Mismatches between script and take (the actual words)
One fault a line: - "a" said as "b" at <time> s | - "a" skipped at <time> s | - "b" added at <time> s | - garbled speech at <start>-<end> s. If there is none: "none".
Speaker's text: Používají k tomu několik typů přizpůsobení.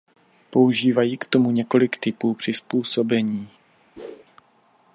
none